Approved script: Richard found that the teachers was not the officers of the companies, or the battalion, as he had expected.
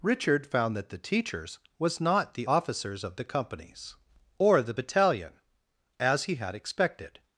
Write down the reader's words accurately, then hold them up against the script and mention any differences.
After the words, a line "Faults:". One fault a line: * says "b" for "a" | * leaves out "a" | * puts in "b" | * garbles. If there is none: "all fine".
Richard found that the teachers was not the officers of the companies, or the battalion, as he had expected.
Faults:
all fine